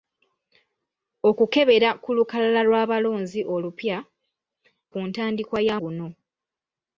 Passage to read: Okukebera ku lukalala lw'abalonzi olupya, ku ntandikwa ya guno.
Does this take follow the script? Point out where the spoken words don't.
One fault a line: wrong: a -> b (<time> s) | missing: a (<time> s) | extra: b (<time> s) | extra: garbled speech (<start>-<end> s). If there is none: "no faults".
no faults